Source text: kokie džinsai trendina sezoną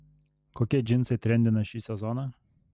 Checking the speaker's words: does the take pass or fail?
fail